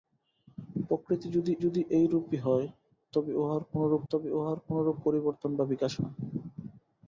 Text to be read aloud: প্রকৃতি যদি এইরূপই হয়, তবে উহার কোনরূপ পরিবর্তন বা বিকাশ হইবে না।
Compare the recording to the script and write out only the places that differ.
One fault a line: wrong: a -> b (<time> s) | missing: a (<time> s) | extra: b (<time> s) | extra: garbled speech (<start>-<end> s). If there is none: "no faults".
extra: যদি (1.6 s)
extra: তবে উহার কোনরূপ (4.1 s)
missing: হইবে (5.9 s)